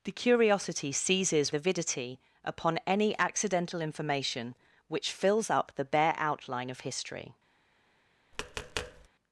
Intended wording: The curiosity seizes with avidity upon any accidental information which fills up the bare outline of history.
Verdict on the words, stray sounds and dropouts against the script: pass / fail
fail